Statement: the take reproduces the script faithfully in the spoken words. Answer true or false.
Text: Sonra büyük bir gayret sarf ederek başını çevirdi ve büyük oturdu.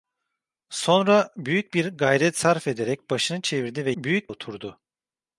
true